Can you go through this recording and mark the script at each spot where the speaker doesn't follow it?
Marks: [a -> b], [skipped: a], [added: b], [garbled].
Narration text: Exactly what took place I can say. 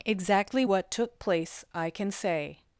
Exactly what took place I can say.